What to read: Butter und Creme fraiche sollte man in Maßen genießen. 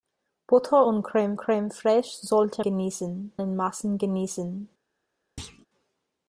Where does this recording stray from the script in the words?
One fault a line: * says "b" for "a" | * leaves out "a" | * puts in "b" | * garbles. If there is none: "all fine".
* puts in "Creme"
* says "genießen" for "man"